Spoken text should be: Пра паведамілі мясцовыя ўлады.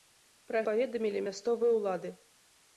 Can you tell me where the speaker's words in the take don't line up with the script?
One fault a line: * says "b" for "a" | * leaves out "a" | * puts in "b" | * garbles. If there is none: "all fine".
all fine